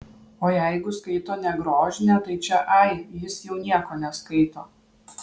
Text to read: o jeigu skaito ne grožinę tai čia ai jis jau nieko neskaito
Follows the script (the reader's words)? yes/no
yes